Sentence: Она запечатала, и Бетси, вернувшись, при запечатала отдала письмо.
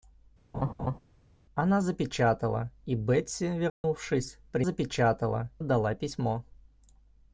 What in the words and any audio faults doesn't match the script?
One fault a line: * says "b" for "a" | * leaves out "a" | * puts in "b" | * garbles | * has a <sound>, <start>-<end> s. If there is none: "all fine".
* has a laugh, 0.5-1.0 s
* has a dropout, 3.7-3.8 s